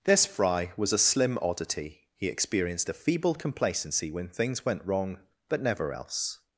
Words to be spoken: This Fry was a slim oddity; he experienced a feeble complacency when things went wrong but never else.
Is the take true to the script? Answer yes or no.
yes